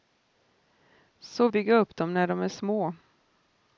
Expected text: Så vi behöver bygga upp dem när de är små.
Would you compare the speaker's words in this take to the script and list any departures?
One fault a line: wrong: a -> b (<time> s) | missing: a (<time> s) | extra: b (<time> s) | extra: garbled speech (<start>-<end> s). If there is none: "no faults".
missing: vi behöver (1.5 s)